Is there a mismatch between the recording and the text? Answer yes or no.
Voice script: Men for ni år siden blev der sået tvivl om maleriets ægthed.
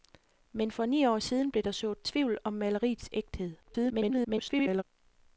yes